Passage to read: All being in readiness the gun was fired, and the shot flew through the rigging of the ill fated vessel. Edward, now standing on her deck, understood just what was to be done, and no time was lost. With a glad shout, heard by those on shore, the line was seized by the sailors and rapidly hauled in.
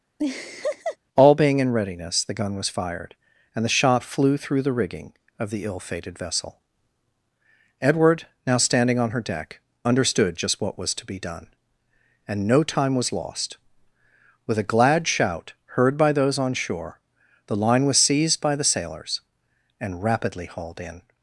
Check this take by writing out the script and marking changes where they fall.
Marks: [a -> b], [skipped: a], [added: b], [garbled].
All being in readiness the gun was fired, and the shot flew through the rigging of the ill fated vessel. Edward, now standing on her deck, understood just what was to be done, and no time was lost. With a glad shout, heard by those on shore, the line was seized by the sailors and rapidly hauled in.